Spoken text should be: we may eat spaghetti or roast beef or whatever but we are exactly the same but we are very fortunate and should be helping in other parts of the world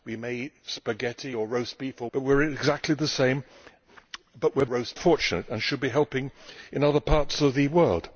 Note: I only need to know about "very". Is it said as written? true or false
false